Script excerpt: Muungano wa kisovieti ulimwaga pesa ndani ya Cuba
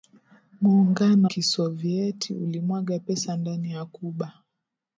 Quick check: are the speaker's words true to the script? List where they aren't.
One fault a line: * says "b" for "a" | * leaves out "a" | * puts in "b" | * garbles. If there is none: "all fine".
* leaves out "wa"